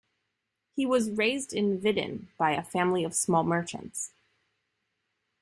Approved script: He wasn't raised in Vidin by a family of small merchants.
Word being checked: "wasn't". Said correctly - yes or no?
no